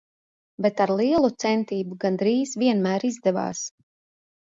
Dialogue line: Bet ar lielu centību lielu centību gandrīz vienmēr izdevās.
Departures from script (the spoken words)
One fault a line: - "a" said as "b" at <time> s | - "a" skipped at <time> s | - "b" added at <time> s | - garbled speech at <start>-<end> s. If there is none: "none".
- "lielu centību" skipped at 2.0 s